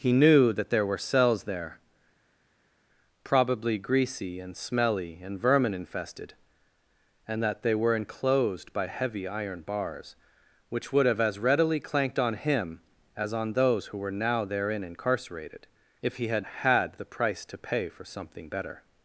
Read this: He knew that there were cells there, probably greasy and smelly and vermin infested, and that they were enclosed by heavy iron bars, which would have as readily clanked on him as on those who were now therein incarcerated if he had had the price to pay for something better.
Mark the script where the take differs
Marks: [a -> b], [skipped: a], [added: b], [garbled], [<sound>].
He knew that there were cells there, probably greasy and smelly and vermin infested, and that they were enclosed by heavy iron bars, which would have as readily clanked on him as on those who were now therein incarcerated if he had had the price to pay for something better.